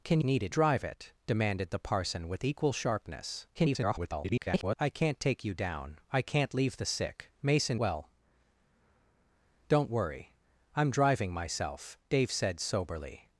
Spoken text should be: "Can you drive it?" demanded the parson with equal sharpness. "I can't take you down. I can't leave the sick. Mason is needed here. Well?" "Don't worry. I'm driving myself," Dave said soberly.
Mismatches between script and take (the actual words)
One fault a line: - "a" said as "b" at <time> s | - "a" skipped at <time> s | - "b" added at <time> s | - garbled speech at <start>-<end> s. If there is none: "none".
- "you" said as "needed" at 0.2 s
- garbled speech at 3.5-4.8 s
- "is needed here" skipped at 7.8 s